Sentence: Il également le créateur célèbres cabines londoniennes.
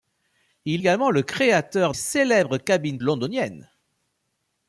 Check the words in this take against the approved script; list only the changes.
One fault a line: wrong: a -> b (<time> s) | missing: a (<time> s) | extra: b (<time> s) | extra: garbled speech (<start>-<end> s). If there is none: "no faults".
no faults